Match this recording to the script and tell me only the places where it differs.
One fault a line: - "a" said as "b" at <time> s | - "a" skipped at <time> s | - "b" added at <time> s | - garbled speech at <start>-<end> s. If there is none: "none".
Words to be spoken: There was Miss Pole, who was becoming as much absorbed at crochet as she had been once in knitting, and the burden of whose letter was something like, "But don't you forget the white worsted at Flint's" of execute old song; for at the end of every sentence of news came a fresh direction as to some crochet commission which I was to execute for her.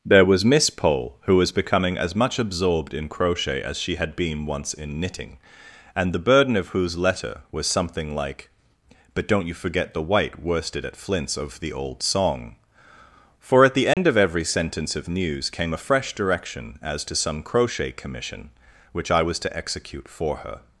- "at" said as "in" at 3.0 s
- "execute" said as "the" at 11.6 s